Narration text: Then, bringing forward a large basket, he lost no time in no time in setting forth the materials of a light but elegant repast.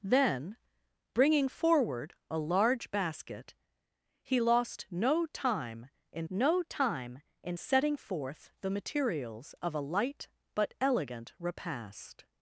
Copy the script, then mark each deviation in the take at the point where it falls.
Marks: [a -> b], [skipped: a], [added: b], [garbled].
Then, bringing forward a large basket, he lost no time in no time in setting forth the materials of a light but elegant repast.